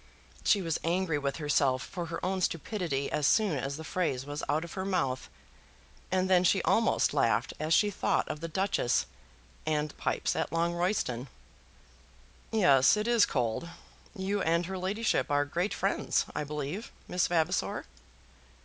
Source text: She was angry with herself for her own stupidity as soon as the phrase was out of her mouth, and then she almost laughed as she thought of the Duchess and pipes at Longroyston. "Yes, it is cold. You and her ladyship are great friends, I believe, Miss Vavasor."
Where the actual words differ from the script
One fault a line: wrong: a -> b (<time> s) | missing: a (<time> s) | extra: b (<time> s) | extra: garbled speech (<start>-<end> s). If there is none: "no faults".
no faults